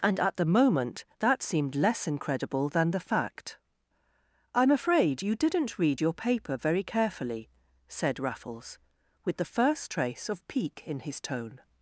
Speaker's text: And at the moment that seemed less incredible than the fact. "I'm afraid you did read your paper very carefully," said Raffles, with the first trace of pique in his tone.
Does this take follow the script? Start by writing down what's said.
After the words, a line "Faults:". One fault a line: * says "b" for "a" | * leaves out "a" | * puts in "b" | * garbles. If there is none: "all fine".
And at the moment that seemed less incredible than the fact. "I'm afraid you didn't read your paper very carefully," said Raffles, with the first trace of pique in his tone.
Faults:
* says "didn't" for "did"